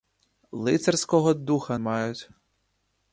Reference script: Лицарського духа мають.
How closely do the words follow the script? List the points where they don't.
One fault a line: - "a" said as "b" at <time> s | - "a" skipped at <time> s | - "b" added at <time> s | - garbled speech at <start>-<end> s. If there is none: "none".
none